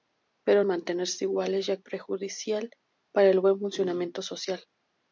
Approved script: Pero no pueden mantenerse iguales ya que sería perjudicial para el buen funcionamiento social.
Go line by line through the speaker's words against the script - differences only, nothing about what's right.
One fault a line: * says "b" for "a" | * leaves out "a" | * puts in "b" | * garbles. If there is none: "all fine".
* leaves out "no pueden"
* leaves out "que sería"